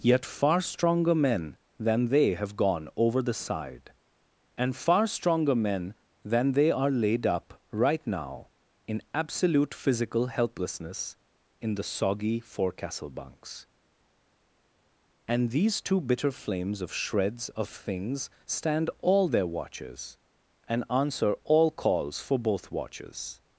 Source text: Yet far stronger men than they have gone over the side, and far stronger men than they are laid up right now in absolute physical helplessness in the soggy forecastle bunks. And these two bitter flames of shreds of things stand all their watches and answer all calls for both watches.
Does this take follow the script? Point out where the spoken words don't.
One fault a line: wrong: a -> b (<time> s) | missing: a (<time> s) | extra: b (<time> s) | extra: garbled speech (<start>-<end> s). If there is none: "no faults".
no faults